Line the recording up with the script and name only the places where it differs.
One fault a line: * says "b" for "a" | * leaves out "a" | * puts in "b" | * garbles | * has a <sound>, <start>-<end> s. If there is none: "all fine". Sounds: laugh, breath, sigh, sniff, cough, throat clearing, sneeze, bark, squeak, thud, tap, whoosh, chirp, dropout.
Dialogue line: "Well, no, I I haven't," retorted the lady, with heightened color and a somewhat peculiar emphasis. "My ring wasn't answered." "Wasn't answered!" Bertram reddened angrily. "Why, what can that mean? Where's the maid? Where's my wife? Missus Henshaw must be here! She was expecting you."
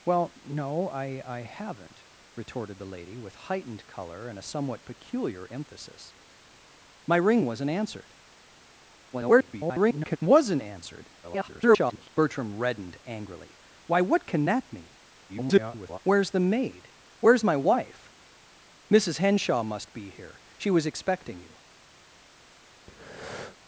* garbles
* garbles
* garbles
* has a breath, 22.9-23.6 s